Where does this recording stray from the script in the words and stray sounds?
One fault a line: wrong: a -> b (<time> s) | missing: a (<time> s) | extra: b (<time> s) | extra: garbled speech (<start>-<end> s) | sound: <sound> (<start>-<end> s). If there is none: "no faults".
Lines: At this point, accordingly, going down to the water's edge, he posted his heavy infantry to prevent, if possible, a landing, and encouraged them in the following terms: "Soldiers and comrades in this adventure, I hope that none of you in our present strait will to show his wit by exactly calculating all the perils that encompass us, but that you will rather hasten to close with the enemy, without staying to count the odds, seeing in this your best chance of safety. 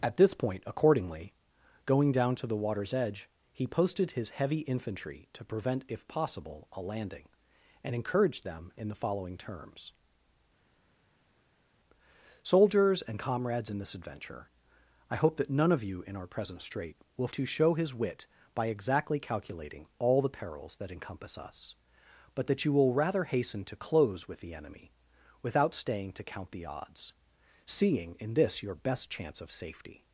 no faults